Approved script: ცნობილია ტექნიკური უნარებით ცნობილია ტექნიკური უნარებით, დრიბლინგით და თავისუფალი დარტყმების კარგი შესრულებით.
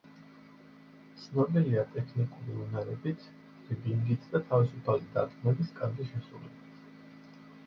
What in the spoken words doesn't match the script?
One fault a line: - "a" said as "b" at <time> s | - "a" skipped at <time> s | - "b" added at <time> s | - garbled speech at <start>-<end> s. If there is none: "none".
- "ცნობილია ტექნიკური უნარებით" skipped at 3.3 s